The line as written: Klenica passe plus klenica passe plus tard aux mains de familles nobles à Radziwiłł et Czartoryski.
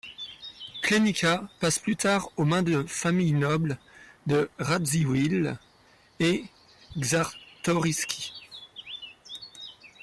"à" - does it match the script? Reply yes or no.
no